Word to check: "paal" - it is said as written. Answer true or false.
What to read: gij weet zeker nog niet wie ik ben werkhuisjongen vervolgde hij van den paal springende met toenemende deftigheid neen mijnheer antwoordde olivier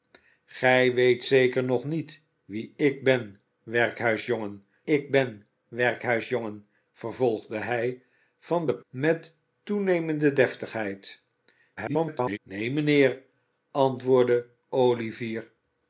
false